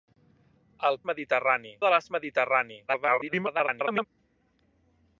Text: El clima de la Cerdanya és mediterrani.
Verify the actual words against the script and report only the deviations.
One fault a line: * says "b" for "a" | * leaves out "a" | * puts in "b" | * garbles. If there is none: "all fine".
* says "mediterrani" for "clima"
* leaves out "Cerdanya"
* garbles